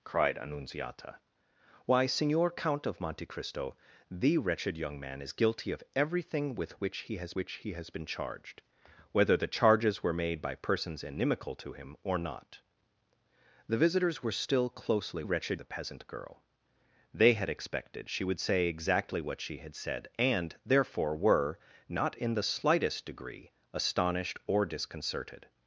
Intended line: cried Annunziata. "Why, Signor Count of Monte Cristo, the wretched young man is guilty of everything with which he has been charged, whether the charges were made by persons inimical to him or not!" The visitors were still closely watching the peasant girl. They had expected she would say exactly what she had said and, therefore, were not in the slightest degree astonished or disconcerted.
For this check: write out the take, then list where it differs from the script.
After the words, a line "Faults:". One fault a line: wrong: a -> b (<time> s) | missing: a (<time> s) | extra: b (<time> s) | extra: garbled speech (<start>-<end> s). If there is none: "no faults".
cried Annunziata. "Why, Signor Count of Monte Cristo, the wretched young man is guilty of everything with which he has which he has been charged, whether the charges were made by persons inimical to him or not!" The visitors were still closely wretched the peasant girl. They had expected she would say exactly what she had said and, therefore, were not in the slightest degree astonished or disconcerted.
Faults:
extra: which he has (7.4 s)
wrong: watching -> wretched (15.2 s)